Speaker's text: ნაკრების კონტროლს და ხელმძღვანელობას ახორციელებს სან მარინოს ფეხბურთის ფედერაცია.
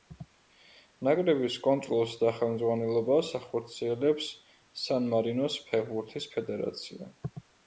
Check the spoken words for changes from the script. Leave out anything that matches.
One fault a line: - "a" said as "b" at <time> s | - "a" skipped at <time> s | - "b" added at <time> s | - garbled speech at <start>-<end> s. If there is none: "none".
none